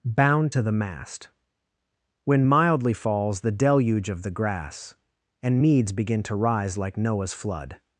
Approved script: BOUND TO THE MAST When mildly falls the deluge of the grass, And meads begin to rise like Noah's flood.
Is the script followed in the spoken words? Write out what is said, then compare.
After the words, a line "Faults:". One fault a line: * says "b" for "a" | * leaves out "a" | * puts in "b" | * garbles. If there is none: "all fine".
BOUND TO THE MAST When mildly falls the deluge of the grass, And meads begin to rise like Noah's flood.
Faults:
all fine